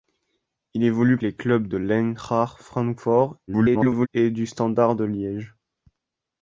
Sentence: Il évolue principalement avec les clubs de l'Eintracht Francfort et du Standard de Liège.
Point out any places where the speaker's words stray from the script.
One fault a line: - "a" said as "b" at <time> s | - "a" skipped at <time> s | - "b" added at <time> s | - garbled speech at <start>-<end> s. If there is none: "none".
- "principalement avec" skipped at 1.2 s
- garbled speech at 3.5-4.1 s